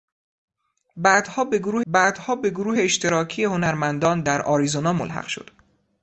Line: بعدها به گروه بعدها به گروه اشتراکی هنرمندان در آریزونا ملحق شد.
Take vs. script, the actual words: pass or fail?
pass